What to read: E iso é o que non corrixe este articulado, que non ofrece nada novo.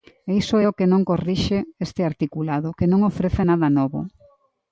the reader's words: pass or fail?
pass